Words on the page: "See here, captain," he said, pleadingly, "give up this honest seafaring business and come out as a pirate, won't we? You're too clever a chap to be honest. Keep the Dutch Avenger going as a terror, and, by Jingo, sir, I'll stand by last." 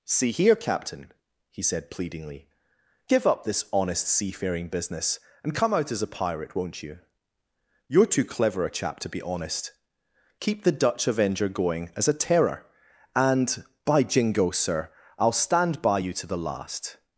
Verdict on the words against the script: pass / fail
fail